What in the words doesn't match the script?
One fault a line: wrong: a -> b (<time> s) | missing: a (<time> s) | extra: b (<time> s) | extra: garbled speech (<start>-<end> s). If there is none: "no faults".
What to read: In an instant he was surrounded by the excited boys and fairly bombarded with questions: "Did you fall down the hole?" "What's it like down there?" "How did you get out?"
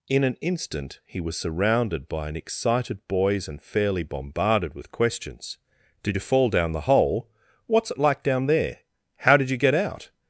wrong: the -> an (2.3 s)